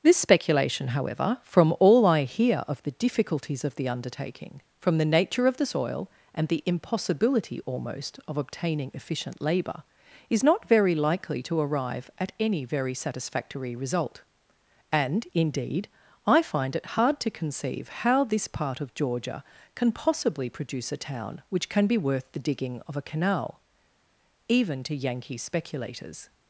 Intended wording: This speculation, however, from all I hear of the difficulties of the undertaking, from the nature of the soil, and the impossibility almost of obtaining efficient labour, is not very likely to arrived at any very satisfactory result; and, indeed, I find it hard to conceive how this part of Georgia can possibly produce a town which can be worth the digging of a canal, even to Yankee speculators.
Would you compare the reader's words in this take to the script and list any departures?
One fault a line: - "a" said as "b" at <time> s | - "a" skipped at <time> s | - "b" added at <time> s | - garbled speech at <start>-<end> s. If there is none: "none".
- "arrived" said as "arrive" at 11.6 s